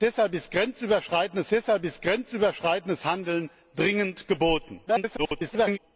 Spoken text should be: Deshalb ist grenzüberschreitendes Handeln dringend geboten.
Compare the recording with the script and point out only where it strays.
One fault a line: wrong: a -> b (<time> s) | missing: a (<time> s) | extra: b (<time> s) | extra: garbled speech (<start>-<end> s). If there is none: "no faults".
extra: deshalb ist grenzüberschreitendes (1.5 s)
extra: garbled speech (4.9-5.8 s)